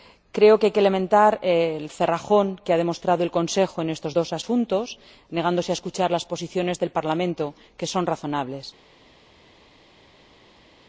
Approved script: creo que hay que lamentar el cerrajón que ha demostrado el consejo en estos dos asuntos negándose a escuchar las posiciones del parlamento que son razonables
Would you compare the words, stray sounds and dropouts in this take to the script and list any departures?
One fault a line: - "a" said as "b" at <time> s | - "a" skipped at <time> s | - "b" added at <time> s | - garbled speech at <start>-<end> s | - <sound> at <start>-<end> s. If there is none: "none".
none